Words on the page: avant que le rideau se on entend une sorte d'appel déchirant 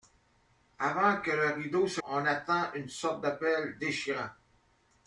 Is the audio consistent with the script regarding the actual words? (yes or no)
yes